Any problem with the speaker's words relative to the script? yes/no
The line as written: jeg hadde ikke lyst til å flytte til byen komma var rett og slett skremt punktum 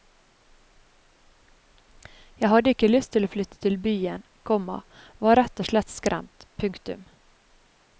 no